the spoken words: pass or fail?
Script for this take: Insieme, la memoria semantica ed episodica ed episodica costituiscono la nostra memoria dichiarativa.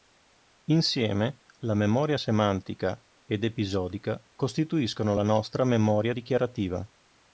fail